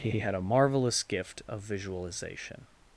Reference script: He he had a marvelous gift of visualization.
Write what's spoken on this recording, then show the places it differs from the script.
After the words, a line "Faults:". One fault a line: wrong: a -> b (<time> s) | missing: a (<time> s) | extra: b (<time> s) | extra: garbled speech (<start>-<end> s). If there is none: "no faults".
He he had a marvelous gift of visualization.
Faults:
no faults